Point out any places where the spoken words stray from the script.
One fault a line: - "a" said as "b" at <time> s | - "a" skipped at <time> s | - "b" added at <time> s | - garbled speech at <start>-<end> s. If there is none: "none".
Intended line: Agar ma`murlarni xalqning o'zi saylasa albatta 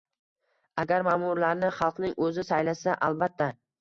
none